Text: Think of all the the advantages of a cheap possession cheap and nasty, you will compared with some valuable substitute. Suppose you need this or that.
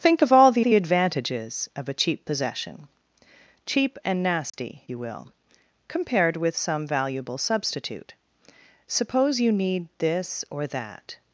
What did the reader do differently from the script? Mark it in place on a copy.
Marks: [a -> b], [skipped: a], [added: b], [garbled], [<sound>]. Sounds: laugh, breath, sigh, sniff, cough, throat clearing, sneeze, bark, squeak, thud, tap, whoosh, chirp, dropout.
Think of all the the advantages of a cheap possession cheap and nasty, [dropout] you will compared with some valuable substitute. Suppose you need this or that.